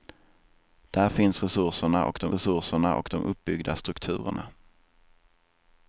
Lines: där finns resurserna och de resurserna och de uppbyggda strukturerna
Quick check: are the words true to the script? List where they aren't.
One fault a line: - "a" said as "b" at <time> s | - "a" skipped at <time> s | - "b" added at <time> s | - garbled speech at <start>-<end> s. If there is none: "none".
none